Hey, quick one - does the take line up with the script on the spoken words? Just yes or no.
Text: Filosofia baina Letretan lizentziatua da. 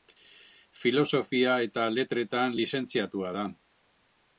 no